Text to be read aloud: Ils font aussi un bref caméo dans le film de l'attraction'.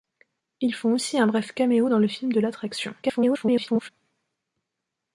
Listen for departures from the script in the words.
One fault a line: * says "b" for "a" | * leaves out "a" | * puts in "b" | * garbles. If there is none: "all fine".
* garbles